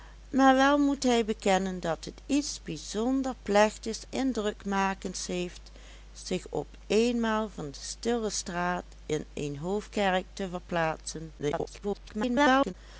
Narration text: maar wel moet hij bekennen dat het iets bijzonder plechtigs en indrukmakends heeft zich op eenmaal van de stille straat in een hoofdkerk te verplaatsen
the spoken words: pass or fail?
fail